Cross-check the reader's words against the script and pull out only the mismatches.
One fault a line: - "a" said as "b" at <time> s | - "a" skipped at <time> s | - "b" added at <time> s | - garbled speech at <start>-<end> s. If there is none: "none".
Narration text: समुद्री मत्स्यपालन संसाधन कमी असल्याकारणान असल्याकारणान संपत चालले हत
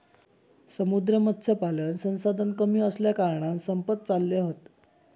- "असल्याकारणान" skipped at 3.6 s